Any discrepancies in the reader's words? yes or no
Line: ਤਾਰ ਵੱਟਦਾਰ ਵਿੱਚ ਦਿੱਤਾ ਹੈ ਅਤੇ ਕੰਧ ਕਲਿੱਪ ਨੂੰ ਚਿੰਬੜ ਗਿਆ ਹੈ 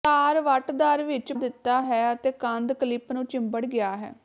no